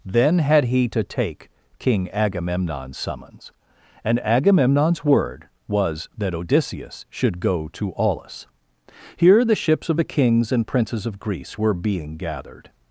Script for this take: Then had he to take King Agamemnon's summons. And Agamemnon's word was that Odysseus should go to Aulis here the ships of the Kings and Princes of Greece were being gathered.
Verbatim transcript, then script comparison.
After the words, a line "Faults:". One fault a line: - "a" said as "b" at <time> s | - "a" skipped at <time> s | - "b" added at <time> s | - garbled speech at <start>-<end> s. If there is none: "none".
Then had he to take King Agamemnon's summons. And Agamemnon's word was that Odysseus should go to Aulis here the ships of the Kings and Princes of Greece were being gathered.
Faults:
none